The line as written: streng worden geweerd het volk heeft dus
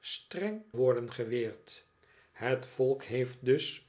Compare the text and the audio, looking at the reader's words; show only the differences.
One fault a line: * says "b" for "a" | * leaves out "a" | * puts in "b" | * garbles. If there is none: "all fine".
all fine